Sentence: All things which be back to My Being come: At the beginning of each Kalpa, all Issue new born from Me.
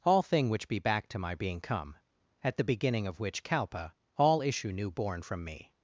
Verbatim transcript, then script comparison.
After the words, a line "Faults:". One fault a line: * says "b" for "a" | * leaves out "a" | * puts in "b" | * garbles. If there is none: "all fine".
All thing which be back to My Being come: At the beginning of which Kalpa, all Issue new born from Me.
Faults:
* says "thing" for "things"
* says "which" for "each"